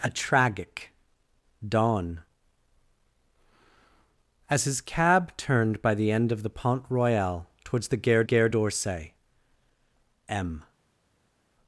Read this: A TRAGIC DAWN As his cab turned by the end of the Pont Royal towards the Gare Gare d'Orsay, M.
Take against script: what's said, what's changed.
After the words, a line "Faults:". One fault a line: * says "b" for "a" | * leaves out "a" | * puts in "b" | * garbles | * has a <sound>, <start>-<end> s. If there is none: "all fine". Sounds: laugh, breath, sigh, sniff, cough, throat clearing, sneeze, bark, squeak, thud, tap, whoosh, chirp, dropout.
A TRAGIC DAWN As his cab turned by the end of the Pont Royal towards the Gare Gare d'Orsay, M.
Faults:
all fine